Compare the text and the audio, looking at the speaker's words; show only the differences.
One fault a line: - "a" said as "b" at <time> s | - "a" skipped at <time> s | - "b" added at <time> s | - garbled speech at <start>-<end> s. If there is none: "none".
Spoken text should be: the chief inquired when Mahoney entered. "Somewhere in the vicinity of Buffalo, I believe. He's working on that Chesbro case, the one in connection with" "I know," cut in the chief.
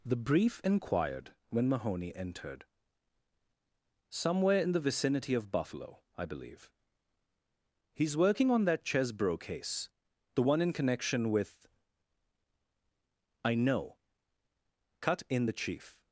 - "chief" said as "brief" at 0.1 s